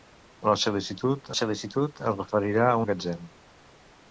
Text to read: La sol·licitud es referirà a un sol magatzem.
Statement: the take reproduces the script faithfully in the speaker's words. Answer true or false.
false